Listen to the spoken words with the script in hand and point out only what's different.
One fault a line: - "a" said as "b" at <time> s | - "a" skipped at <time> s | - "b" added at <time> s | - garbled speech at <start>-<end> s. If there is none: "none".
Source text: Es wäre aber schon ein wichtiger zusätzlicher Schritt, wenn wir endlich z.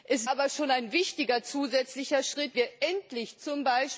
- "wäre" skipped at 0.3 s
- "wenn" skipped at 2.5 s